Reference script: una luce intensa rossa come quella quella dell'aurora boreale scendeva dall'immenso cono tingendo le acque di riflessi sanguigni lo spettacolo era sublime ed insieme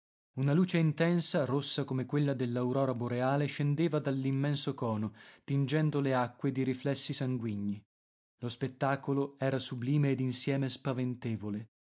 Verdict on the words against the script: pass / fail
fail